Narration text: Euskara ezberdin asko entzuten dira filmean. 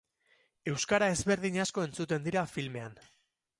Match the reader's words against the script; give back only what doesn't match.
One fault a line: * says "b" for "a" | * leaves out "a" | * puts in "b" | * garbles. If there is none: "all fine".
all fine